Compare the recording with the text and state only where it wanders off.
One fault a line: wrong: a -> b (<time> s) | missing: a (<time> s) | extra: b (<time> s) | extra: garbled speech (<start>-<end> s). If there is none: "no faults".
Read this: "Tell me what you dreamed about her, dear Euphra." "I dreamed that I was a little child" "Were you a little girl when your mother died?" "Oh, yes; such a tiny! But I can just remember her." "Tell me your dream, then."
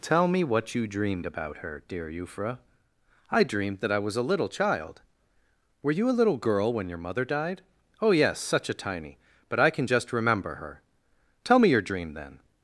no faults